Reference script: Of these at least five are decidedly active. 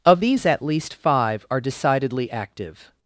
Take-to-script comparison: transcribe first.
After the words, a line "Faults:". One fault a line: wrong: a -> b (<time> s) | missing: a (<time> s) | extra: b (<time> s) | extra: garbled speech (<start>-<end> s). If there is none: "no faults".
Of these at least five are decidedly active.
Faults:
no faults